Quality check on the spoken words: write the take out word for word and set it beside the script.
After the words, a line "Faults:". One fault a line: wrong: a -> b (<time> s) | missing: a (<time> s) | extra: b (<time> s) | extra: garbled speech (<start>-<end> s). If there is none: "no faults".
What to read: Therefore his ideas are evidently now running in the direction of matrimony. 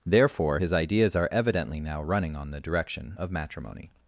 Therefore his ideas are evidently now running on the direction of matrimony.
Faults:
wrong: in -> on (2.4 s)